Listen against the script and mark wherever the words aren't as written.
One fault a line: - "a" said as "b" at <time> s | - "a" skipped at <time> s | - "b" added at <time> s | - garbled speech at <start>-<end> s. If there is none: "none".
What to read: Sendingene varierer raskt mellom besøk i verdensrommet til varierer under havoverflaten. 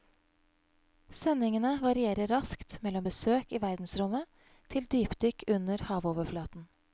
- "varierer" said as "dypdykk" at 4.9 s